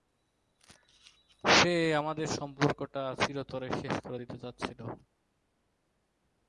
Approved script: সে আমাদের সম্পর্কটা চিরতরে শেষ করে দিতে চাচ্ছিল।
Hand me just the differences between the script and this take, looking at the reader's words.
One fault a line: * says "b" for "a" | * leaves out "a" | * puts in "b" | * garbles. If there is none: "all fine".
all fine